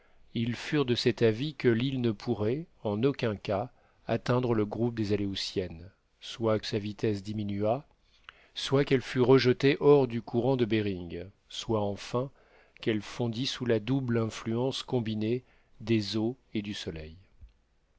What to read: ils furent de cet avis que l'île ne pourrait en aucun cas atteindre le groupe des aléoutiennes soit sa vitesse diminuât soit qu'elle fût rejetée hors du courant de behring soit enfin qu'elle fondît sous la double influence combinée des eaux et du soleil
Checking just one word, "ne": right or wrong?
right